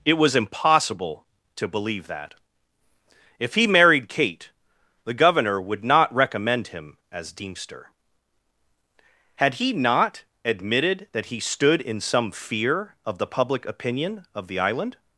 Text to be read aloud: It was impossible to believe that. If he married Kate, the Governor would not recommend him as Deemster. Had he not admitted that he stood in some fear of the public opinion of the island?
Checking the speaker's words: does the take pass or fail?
pass